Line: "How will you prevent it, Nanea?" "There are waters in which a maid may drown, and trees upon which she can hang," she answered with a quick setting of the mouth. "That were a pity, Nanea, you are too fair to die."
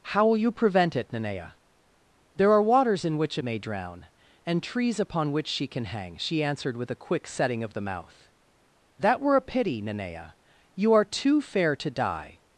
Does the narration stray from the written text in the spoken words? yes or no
yes